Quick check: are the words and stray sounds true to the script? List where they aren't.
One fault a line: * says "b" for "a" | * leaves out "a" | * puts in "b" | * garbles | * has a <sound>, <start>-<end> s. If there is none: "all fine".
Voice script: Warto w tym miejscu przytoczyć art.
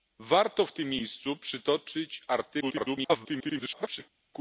* garbles